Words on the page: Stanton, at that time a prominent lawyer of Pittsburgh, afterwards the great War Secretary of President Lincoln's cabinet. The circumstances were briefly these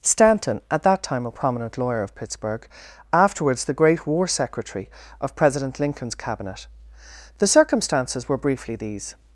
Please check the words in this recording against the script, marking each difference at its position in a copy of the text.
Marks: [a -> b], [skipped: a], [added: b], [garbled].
Stanton, at that time a prominent lawyer of Pittsburgh, afterwards the great War Secretary of President Lincoln's cabinet. The circumstances were briefly these